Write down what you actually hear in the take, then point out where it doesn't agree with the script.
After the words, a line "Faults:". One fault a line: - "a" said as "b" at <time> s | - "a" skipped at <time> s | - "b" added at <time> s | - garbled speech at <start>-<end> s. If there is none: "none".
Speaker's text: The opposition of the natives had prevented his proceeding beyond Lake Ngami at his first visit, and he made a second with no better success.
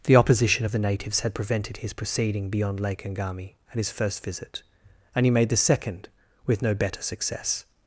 The opposition of the natives had prevented his proceeding beyond Lake Ngami at his first visit, and he made the second with no better success.
Faults:
- "a" said as "the" at 5.5 s